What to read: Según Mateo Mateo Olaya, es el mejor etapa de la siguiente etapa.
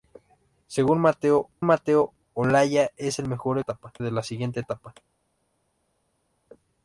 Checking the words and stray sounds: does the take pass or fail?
pass